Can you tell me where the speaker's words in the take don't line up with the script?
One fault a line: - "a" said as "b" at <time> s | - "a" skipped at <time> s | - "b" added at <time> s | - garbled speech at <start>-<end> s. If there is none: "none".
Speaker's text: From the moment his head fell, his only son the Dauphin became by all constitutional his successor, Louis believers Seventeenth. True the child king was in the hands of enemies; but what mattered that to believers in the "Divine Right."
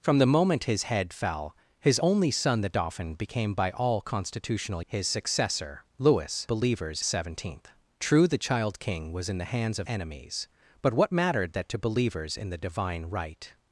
none